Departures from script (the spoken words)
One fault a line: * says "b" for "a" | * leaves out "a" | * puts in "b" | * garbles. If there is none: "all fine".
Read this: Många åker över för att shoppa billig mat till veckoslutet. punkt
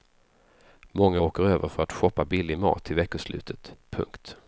all fine